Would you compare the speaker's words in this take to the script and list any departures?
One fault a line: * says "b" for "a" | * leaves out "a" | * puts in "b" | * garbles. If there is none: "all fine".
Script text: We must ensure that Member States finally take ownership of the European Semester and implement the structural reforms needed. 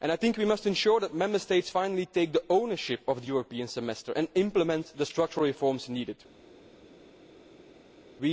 all fine